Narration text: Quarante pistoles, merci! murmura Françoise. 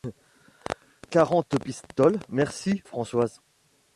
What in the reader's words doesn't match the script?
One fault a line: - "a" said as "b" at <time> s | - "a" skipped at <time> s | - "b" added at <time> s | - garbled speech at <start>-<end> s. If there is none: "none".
- "murmura" skipped at 2.8 s